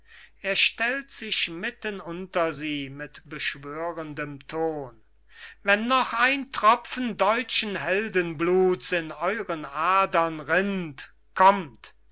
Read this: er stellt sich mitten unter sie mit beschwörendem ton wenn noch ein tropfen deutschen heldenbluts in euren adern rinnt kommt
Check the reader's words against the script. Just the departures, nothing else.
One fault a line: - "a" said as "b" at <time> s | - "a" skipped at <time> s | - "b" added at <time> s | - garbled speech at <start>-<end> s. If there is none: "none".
none